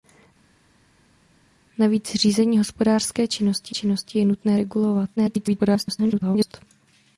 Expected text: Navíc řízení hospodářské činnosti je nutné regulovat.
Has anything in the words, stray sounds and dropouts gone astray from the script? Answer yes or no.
yes